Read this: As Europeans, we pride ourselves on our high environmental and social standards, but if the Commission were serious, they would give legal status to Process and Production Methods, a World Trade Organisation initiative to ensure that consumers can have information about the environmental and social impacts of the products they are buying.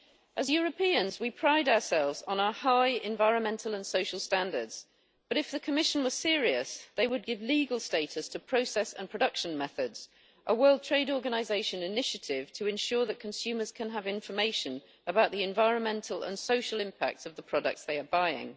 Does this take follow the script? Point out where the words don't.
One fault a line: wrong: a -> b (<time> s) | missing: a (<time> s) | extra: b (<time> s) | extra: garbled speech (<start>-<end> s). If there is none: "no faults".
no faults